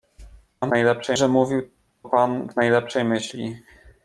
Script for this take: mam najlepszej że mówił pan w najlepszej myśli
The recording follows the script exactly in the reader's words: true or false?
true